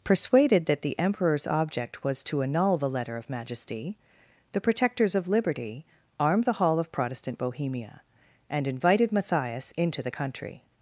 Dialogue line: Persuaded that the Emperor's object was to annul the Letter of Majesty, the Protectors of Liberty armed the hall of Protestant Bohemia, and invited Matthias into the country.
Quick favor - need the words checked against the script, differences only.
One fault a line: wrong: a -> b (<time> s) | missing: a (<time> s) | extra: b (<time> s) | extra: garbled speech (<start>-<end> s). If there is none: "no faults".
no faults